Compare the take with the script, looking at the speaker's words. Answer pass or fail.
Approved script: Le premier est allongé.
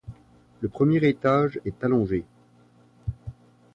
fail